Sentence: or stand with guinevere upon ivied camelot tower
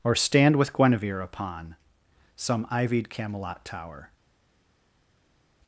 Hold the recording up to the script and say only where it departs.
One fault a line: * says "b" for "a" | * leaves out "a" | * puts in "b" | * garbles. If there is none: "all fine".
* puts in "some"